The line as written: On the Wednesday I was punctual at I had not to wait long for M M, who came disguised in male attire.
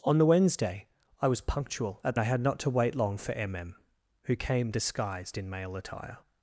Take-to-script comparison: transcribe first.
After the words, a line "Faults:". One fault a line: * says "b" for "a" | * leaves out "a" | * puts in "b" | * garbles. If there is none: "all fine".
On the Wednesday I was punctual at I had not to wait long for M M, who came disguised in male attire.
Faults:
all fine